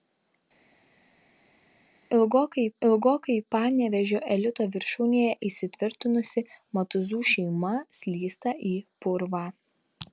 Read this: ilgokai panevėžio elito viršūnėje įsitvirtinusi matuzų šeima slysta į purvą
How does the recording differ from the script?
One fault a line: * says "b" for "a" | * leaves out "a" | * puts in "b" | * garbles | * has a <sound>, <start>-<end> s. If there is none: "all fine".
* puts in "ilgokai"